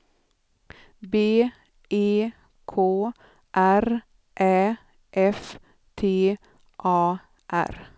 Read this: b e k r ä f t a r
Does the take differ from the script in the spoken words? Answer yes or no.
no